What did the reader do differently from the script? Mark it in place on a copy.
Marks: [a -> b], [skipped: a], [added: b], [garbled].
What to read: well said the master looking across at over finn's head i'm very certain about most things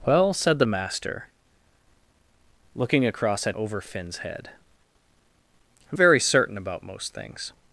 well said the master looking across at over finn's head i'm very certain about most things